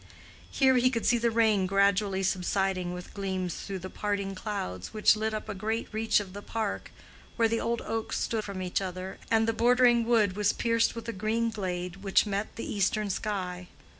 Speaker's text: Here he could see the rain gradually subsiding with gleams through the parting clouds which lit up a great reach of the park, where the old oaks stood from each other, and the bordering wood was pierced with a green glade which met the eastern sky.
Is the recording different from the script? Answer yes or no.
no